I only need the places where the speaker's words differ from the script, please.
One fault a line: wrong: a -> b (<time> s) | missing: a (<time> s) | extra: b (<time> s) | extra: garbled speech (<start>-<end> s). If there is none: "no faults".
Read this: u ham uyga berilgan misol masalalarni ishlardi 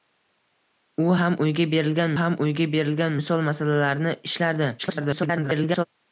extra: ham uyga berilgan (2.2 s)
extra: garbled speech (4.8-5.8 s)